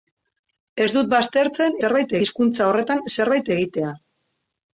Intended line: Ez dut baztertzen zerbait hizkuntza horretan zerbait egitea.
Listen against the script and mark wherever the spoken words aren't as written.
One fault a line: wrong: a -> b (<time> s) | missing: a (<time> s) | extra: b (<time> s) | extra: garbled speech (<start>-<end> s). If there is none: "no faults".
no faults